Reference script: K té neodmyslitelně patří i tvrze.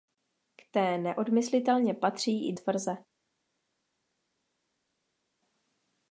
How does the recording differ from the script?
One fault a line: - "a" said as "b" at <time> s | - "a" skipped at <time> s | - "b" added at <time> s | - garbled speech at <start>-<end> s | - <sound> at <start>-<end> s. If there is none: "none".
none